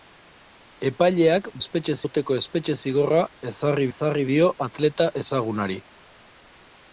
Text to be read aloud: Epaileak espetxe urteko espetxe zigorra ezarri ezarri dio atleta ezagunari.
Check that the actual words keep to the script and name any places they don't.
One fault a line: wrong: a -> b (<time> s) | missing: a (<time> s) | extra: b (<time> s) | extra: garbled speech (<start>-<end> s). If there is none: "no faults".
no faults